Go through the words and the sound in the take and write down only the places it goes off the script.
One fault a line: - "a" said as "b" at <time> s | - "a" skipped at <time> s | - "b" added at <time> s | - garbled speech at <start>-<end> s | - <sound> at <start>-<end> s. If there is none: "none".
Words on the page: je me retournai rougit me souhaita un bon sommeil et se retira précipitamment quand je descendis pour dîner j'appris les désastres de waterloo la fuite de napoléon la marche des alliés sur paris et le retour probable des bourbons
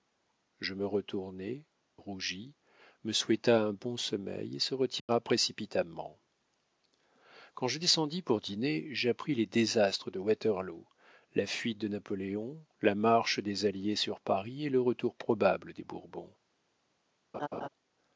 - dropout at 5.0-5.1 s
- laugh at 17.3-17.7 s